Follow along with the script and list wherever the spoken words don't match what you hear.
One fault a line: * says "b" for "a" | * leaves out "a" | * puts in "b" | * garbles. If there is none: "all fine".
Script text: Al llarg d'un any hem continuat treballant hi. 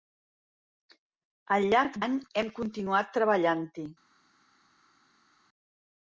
* leaves out "d'un"